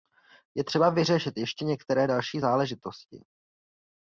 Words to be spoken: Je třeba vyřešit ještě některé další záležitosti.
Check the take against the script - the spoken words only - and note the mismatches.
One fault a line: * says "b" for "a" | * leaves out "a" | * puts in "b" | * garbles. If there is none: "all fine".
all fine